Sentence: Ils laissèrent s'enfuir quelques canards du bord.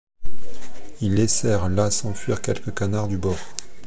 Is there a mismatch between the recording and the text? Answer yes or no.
yes